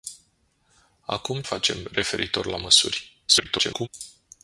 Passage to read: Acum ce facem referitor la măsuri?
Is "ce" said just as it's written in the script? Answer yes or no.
no